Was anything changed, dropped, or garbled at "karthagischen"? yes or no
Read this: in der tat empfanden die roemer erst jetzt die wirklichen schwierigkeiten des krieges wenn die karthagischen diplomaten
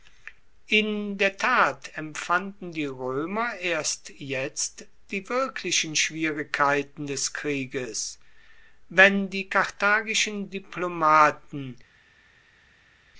no